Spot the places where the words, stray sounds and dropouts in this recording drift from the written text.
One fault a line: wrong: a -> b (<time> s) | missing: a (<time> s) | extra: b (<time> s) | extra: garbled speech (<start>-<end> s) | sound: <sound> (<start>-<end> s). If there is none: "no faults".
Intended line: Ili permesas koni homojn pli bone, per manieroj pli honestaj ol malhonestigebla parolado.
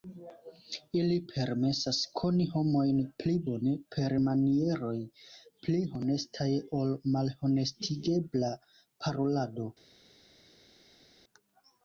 no faults